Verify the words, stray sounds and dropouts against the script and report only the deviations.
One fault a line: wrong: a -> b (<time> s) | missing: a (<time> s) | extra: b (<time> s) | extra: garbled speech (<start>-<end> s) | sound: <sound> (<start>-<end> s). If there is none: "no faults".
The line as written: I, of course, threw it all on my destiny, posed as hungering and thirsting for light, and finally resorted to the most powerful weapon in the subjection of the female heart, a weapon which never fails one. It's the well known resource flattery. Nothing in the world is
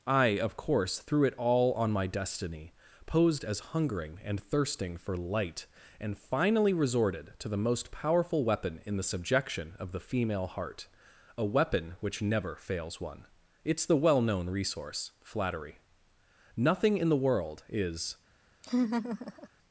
sound: laugh (18.6-19.5 s)